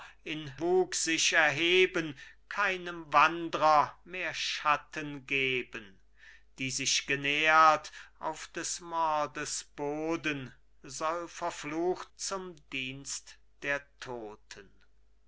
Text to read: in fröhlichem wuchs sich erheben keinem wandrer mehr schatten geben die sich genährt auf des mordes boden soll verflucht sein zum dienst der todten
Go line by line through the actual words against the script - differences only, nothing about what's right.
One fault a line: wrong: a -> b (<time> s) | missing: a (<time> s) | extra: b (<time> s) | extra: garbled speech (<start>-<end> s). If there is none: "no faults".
missing: fröhlichem (0.5 s)
missing: sein (12.1 s)